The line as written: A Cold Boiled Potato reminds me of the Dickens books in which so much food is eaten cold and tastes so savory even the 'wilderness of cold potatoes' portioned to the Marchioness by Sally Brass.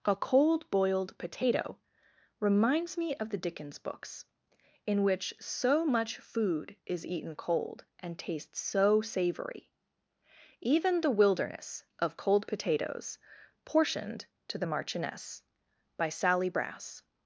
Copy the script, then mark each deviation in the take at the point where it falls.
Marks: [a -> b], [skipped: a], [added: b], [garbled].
A Cold Boiled Potato reminds me of the Dickens books in which so much food is eaten cold and tastes so savory even the 'wilderness of cold potatoes' portioned to the Marchioness by Sally Brass.